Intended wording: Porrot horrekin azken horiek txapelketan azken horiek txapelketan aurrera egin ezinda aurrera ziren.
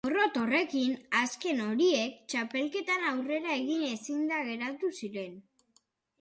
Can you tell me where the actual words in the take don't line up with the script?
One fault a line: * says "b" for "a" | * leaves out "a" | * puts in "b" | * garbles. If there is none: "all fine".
* leaves out "azken horiek txapelketan"
* says "geratu" for "aurrera"